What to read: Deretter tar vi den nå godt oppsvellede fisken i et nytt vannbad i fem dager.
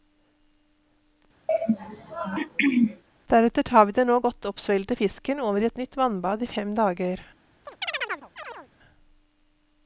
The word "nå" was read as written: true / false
true